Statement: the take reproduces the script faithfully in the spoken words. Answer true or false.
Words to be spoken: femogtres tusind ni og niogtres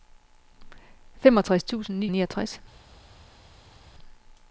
true